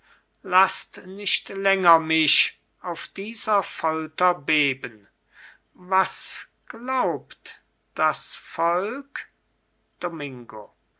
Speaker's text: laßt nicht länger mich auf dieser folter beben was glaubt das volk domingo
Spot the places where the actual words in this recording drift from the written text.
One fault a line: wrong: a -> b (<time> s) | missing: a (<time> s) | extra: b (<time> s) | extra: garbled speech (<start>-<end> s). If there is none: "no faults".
no faults